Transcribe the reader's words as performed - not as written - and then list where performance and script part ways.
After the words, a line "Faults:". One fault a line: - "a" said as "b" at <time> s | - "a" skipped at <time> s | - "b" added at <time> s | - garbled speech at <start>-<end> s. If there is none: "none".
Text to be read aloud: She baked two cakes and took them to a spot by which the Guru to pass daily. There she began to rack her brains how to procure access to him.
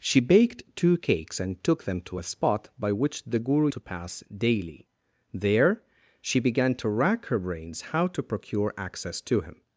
She baked two cakes and took them to a spot by which the Guru to pass daily. There she began to rack her brains how to procure access to him.
Faults:
none